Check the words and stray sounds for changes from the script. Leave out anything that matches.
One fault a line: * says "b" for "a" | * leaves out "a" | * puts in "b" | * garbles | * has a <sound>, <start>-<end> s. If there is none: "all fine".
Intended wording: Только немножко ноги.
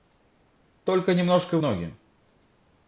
all fine